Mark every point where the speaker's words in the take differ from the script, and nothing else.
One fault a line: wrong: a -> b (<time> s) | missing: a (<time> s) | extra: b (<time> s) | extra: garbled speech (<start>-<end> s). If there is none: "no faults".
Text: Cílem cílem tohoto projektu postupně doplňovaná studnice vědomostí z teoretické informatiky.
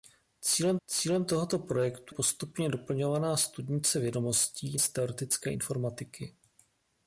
no faults